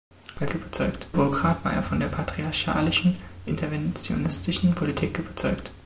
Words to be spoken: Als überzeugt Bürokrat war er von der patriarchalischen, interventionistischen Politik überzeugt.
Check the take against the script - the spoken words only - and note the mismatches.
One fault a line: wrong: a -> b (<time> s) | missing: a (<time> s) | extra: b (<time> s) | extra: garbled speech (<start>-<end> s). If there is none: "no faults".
no faults